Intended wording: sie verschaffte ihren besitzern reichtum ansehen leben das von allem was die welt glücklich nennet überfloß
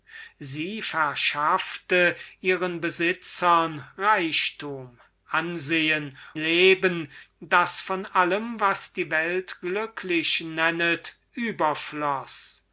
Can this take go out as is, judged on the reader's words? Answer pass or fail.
pass